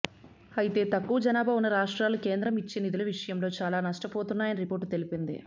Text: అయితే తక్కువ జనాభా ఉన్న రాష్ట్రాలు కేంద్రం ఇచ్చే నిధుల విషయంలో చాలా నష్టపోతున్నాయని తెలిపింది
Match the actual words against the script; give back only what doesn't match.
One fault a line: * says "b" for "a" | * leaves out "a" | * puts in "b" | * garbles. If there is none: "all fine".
* puts in "రిపోర్టు"